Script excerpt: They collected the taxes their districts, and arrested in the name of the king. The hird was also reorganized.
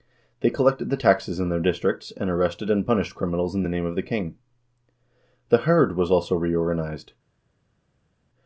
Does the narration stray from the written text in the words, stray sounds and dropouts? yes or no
yes